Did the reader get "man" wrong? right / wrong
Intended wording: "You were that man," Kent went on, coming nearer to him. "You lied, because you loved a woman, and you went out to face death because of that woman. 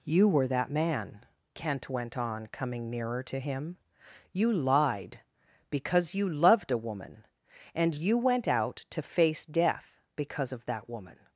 right